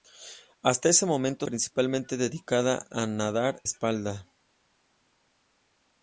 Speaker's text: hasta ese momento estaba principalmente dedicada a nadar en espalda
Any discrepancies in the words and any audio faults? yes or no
yes